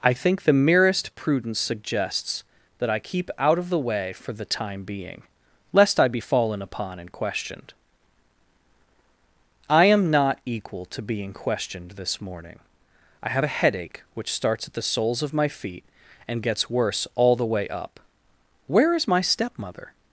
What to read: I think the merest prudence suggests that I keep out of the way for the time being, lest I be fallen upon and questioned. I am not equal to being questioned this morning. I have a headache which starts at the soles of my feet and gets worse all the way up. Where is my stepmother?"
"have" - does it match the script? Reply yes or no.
yes